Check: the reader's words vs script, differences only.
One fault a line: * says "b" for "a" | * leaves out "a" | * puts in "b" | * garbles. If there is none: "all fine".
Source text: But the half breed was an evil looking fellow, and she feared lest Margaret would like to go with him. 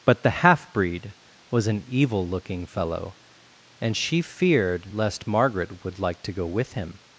all fine